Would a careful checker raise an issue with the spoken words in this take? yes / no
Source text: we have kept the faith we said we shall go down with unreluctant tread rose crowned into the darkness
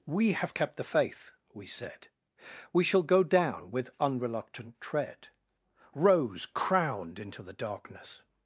no